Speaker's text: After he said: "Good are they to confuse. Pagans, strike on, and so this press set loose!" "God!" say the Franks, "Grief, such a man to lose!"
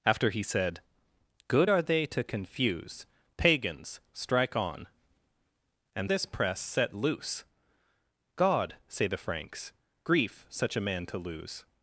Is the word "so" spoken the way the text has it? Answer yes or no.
no